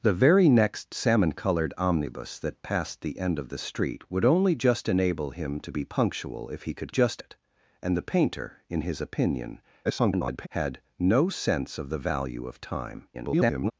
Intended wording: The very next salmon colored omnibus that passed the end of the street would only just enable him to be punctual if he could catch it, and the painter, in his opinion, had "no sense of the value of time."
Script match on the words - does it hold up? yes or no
no